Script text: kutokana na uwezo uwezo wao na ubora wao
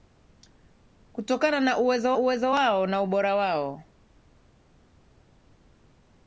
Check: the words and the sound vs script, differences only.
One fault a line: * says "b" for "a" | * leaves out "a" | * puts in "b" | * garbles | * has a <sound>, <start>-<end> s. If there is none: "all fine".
all fine